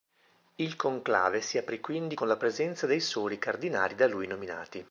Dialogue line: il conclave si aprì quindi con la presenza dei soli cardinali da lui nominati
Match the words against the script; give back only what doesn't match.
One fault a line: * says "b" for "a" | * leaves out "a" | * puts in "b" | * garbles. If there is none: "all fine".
all fine